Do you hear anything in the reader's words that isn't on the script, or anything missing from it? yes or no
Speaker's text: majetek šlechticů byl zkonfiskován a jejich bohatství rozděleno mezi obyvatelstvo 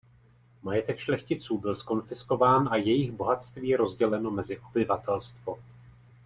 no